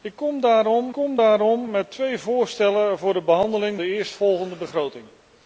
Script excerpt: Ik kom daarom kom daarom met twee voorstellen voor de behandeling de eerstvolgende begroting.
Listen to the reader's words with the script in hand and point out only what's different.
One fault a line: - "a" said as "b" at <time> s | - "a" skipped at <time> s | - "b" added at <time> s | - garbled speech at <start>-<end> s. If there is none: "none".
none